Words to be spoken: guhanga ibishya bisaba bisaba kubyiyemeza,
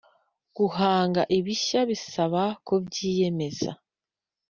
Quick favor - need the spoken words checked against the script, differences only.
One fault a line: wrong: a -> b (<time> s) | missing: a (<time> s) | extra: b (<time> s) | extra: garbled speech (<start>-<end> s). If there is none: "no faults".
missing: bisaba (2.4 s)